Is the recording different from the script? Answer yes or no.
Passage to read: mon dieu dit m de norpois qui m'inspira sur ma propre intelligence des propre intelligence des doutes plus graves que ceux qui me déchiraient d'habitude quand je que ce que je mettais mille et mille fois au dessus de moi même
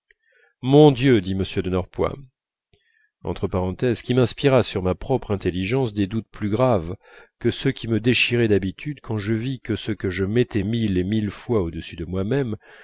yes